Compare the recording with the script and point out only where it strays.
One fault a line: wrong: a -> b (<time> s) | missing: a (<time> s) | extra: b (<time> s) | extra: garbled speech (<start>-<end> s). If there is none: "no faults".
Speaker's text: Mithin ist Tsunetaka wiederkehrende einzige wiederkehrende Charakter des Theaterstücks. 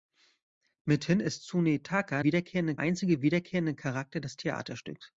no faults